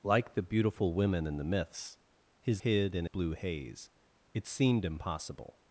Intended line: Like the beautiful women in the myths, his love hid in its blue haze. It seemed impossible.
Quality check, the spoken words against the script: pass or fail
fail